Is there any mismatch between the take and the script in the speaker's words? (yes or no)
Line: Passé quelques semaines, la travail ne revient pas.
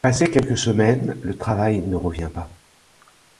yes